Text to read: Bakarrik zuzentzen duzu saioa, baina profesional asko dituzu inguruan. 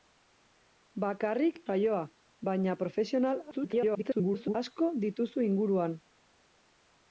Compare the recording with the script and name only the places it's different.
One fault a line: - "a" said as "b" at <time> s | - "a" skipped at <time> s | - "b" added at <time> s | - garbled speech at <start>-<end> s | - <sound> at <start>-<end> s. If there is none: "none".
- "zuzentzen duzu" skipped at 1.6 s
- garbled speech at 3.5-4.5 s